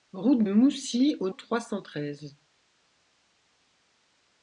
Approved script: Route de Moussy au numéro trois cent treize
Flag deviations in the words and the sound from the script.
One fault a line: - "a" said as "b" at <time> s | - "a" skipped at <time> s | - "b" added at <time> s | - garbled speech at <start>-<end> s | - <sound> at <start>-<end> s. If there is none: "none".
- "de" skipped at 0.4 s
- "numéro" skipped at 1.3 s